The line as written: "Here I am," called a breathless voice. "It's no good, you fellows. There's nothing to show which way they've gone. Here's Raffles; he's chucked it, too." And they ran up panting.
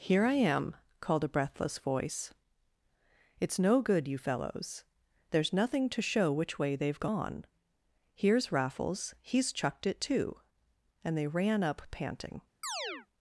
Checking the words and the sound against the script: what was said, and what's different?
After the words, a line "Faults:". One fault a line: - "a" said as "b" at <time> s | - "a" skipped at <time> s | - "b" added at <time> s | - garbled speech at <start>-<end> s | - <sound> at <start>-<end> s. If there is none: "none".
"Here I am," called a breathless voice. "It's no good, you fellows. There's nothing to show which way they've gone. Here's Raffles; he's chucked it, too." And they ran up panting.
Faults:
- chirp at 12.6-13.1 s